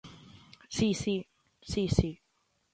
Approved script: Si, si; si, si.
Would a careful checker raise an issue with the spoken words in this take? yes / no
no